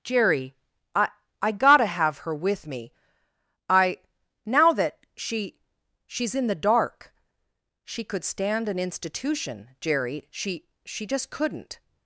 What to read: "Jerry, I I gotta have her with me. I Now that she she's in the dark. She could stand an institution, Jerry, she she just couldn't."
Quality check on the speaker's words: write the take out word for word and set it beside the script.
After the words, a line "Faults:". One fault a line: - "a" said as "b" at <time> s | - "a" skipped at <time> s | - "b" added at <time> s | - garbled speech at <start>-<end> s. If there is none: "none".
"Jerry, I I gotta have her with me. I Now that she she's in the dark. She could stand an institution, Jerry, she she just couldn't."
Faults:
none